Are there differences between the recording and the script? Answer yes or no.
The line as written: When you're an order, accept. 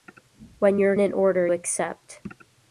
no